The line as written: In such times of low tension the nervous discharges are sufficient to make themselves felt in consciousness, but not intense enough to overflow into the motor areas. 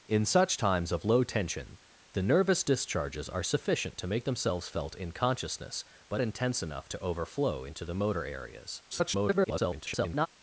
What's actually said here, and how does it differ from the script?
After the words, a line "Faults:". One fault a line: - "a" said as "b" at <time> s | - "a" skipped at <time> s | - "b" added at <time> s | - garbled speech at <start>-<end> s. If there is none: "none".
In such times of low tension the nervous discharges are sufficient to make themselves felt in consciousness, but intense enough to overflow into the motor areas. [garbled]
Faults:
- "not" skipped at 6.2 s
- garbled speech at 8.9-10.3 s